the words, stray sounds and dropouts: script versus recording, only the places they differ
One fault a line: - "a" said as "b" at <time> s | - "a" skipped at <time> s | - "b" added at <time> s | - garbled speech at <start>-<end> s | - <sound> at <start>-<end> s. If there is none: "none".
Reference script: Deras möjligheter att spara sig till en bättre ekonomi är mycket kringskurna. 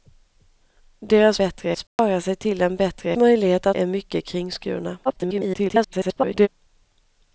- "möjligheter" said as "bättre" at 1.4 s
- dropout at 1.9-2.0 s
- "ekonomi" said as "möjligheter" at 3.2 s
- garbled speech at 5.0-6.5 s